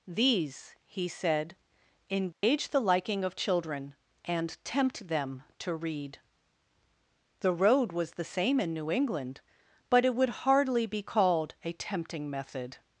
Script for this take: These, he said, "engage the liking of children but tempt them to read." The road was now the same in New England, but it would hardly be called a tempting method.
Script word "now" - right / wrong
wrong